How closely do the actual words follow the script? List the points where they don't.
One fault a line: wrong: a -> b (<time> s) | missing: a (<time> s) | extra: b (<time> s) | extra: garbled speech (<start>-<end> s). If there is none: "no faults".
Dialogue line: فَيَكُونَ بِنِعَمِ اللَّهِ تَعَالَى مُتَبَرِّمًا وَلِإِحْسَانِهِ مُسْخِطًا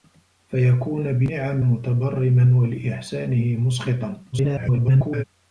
missing: اللَّهِ تَعَالَى (1.6 s)
extra: garbled speech (4.3-5.2 s)